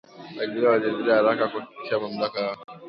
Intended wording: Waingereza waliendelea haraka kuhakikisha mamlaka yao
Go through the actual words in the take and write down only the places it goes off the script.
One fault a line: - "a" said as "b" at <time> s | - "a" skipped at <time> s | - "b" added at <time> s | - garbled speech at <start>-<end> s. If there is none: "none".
none